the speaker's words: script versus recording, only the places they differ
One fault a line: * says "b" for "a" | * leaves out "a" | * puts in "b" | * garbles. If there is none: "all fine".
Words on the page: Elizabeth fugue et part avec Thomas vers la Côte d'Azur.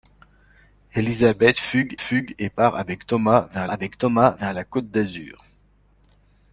* puts in "fugue"
* puts in "avec Thomas vers"